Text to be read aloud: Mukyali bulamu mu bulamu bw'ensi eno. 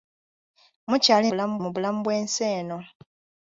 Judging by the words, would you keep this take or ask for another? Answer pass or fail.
pass